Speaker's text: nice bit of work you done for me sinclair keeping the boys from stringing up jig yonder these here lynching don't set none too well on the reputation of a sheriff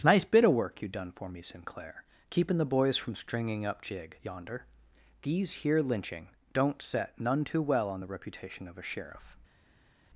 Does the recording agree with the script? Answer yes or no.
yes